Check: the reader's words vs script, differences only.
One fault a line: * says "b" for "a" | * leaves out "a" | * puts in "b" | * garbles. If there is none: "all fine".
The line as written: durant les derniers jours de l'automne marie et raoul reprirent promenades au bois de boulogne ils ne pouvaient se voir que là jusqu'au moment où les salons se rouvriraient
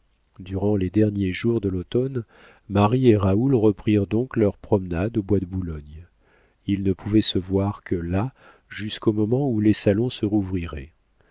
* puts in "donc leurs"